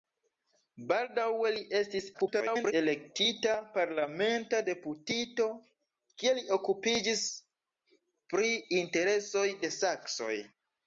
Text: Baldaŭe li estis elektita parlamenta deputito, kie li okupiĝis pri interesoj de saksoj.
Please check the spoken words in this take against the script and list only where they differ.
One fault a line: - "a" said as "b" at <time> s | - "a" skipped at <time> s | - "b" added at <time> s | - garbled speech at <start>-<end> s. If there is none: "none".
- garbled speech at 2.1-2.7 s